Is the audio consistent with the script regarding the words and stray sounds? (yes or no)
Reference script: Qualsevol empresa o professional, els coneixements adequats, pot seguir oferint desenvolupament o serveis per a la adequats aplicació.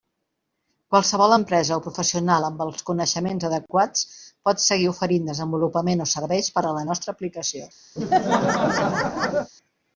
no